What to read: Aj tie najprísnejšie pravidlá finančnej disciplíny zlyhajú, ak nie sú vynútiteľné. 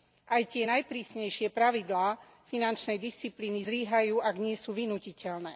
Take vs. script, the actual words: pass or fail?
pass